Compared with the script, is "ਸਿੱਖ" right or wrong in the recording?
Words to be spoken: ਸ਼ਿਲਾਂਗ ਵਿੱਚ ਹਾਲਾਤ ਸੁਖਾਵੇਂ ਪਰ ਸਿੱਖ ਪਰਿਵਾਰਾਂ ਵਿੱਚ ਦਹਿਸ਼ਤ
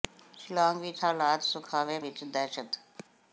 wrong